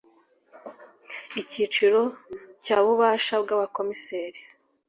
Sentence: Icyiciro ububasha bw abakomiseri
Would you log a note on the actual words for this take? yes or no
yes